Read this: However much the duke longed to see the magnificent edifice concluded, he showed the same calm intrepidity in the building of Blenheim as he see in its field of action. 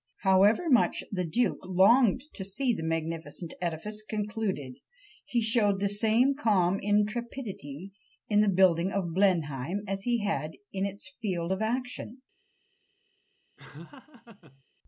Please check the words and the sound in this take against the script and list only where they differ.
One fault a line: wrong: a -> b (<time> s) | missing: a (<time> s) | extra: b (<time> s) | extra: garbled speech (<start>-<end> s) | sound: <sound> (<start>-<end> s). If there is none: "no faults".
wrong: see -> had (10.2 s)
sound: laugh (13.6-14.6 s)